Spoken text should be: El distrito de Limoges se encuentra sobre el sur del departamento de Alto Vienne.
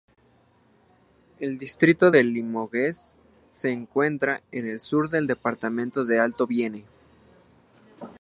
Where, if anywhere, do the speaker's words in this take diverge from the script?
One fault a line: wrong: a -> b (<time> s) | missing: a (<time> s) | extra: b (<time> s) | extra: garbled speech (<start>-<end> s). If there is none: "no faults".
wrong: sobre -> en (4.5 s)